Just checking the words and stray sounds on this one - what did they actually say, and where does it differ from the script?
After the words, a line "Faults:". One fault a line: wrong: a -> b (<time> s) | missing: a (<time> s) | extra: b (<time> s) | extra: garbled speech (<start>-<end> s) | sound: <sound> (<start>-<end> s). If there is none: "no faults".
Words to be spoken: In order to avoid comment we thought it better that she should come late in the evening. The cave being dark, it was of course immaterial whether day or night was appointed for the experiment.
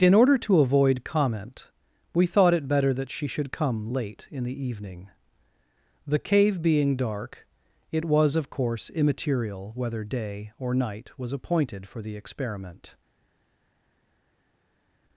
In order to avoid comment we thought it better that she should come late in the evening. The cave being dark, it was of course immaterial whether day or night was appointed for the experiment.
Faults:
no faults